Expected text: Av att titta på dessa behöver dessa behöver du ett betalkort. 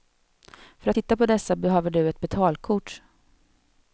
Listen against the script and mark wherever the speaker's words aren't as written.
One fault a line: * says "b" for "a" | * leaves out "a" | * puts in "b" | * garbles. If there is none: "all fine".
* says "För" for "Av"
* leaves out "dessa behöver"